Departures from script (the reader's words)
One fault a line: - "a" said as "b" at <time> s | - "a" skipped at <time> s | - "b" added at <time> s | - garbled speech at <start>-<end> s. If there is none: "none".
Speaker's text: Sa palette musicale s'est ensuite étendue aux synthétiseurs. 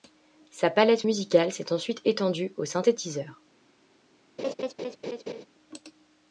none